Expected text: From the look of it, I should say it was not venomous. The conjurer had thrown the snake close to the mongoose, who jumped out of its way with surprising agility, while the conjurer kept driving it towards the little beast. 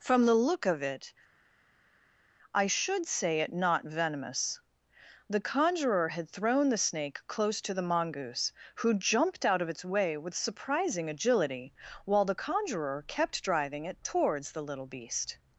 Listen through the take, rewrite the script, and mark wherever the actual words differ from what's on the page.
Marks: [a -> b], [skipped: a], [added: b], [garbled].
From the look of it, I should say it [skipped: was] not venomous. The conjurer had thrown the snake close to the mongoose, who jumped out of its way with surprising agility, while the conjurer kept driving it towards the little beast.